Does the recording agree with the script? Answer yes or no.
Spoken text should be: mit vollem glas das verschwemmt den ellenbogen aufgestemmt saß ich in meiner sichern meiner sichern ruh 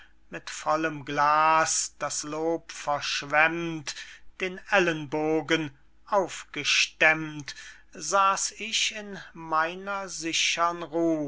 no